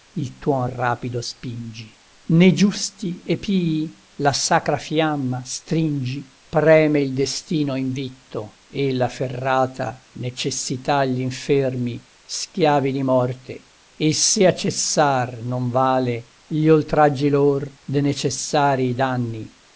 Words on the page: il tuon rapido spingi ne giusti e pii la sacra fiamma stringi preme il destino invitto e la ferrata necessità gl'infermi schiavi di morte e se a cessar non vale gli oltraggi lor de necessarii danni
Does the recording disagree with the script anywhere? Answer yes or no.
no